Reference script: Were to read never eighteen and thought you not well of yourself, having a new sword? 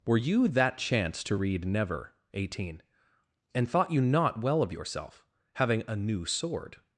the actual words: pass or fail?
fail